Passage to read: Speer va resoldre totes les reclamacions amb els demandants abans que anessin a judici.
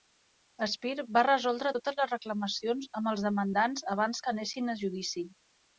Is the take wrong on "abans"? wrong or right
right